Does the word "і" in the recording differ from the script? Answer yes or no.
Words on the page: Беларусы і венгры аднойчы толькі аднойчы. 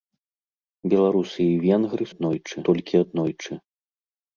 no